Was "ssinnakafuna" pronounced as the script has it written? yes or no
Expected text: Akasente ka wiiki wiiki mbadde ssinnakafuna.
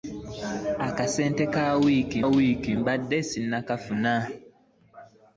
yes